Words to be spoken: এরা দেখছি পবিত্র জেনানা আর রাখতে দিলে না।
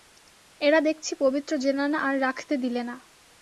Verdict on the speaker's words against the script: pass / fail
pass